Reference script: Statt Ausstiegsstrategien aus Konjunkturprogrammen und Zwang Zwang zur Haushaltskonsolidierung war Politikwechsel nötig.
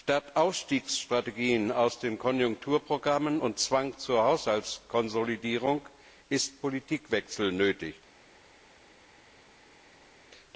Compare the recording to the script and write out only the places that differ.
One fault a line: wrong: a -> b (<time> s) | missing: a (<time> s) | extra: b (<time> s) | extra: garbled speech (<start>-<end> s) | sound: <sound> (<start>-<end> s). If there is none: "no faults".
extra: den (2.0 s)
missing: Zwang (4.0 s)
wrong: war -> ist (6.3 s)